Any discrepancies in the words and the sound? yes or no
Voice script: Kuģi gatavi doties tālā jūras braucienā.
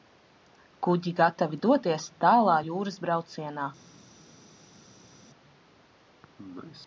no